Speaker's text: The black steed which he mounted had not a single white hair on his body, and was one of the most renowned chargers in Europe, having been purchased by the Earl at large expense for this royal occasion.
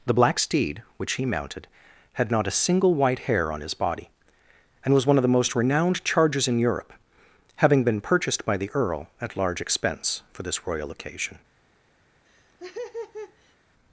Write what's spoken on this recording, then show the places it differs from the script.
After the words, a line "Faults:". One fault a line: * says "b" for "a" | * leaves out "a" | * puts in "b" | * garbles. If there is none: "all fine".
The black steed which he mounted had not a single white hair on his body, and was one of the most renowned chargers in Europe, having been purchased by the Earl at large expense for this royal occasion.
Faults:
all fine